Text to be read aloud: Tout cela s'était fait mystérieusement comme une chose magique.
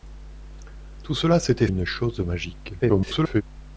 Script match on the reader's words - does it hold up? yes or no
no